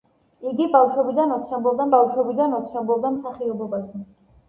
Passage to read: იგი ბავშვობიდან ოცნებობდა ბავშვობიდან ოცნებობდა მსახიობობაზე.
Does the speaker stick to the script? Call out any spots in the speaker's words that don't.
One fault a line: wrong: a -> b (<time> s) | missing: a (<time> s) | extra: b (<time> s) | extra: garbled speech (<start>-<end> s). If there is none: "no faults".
no faults